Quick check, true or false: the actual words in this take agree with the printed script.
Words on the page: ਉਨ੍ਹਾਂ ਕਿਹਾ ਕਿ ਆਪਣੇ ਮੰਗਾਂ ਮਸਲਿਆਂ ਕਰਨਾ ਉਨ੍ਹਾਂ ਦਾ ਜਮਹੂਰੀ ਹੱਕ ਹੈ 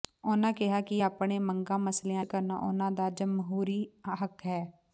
true